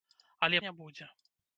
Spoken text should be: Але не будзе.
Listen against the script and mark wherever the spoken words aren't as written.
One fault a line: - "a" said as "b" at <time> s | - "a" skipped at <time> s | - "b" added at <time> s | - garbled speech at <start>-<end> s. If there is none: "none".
none